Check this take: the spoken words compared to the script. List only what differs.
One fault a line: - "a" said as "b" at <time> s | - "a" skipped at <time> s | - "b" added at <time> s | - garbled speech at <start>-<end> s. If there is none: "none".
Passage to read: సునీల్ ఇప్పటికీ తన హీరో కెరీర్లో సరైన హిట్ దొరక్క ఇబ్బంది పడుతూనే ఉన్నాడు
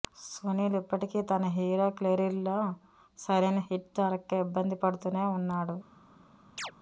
none